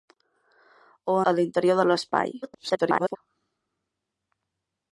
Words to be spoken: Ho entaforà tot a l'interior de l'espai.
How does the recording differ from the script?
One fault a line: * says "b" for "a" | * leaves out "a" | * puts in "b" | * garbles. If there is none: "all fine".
* leaves out "entaforà tot"
* garbles